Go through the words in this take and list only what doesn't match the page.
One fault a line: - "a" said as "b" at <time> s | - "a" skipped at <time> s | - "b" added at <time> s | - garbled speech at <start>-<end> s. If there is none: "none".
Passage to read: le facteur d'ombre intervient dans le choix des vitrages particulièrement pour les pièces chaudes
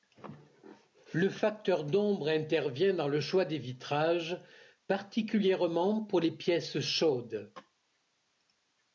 none